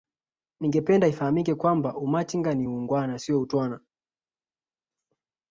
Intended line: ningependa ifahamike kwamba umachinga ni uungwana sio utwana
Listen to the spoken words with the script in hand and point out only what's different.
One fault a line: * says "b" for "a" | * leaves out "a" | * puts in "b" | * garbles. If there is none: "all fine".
all fine